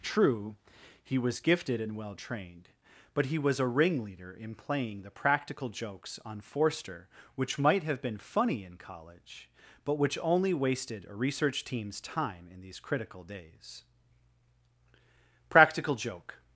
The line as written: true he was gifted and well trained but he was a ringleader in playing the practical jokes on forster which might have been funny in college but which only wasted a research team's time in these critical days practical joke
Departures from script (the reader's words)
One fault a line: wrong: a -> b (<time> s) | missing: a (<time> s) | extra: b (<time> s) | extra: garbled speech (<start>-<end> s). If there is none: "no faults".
no faults